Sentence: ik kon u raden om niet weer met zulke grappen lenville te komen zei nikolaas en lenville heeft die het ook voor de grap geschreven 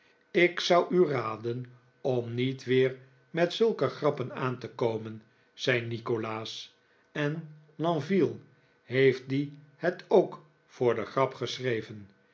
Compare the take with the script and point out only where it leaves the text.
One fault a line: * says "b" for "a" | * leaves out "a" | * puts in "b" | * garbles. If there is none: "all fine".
* says "zou" for "kon"
* says "aan" for "lenville"